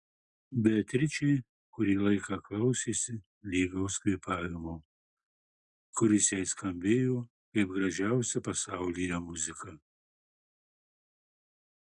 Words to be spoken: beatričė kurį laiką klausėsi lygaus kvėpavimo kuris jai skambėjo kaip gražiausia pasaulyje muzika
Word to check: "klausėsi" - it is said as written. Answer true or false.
true